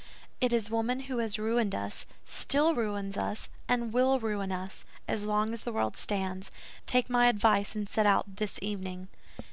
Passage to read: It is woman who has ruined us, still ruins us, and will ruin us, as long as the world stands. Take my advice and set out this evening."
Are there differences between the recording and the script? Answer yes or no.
no